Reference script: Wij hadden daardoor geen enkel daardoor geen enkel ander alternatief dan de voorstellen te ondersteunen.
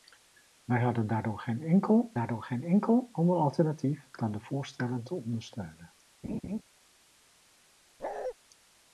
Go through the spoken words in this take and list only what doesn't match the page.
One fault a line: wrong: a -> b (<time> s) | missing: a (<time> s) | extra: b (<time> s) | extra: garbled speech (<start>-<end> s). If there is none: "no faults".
no faults